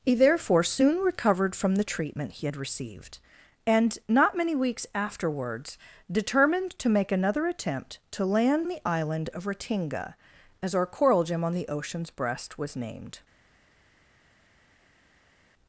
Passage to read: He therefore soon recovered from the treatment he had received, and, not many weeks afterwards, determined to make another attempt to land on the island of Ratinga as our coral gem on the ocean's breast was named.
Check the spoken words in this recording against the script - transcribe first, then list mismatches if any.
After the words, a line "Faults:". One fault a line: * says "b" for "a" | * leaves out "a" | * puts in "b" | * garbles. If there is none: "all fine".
He therefore soon recovered from the treatment he had received, and, not many weeks afterwards, determined to make another attempt to land the island of Ratinga as our coral gem on the ocean's breast was named.
Faults:
* leaves out "on"